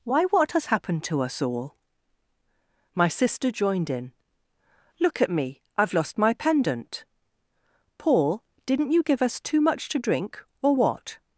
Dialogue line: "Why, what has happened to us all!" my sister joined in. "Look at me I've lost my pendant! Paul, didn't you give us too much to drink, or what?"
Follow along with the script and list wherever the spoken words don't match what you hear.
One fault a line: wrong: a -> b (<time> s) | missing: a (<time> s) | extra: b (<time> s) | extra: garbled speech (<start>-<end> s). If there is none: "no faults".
no faults